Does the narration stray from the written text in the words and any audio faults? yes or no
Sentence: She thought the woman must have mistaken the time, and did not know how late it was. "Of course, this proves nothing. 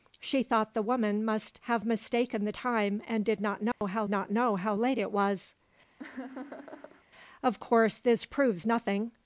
yes